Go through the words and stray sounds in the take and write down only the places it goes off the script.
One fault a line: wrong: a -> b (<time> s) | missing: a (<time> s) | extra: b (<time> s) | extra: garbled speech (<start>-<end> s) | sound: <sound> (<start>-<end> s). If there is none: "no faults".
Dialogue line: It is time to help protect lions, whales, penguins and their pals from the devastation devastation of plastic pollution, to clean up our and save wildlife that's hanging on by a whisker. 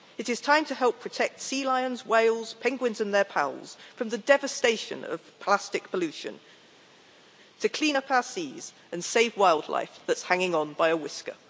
extra: sea (1.4 s)
missing: devastation (5.0 s)
extra: seas (8.2 s)